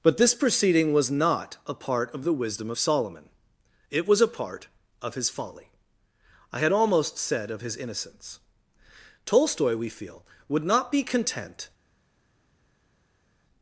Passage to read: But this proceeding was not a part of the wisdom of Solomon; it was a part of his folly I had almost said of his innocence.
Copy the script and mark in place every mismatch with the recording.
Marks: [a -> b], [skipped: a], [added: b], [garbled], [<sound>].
But this proceeding was not a part of the wisdom of Solomon; it was a part of his folly I had almost said of his innocence. [added: Tolstoy we feel would not be content]